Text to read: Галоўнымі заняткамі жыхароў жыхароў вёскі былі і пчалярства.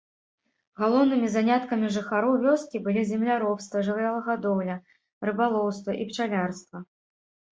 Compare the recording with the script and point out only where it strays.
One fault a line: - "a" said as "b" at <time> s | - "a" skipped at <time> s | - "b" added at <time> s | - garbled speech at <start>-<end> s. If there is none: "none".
- "жыхароў" skipped at 2.3 s
- "земляробства жывёлагадоўля рыбалоўства" added at 3.1 s